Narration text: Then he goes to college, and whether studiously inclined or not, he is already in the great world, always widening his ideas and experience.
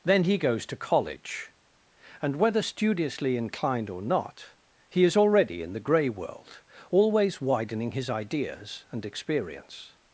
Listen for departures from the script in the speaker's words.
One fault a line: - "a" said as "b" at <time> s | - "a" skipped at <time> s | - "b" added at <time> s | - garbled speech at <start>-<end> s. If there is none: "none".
- "great" said as "grey" at 5.8 s